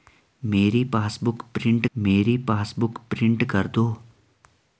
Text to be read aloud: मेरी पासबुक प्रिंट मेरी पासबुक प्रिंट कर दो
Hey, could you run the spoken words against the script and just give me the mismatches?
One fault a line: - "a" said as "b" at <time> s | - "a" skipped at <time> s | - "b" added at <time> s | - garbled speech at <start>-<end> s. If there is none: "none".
none